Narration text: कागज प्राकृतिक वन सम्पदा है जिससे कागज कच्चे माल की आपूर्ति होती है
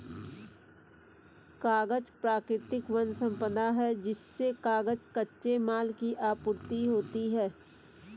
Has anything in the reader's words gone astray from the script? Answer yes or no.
no